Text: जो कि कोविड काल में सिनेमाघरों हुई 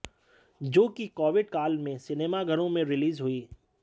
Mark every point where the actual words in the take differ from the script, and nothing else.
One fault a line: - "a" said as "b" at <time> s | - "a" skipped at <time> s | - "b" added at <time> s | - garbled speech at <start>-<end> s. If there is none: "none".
- "में रिलीज" added at 2.7 s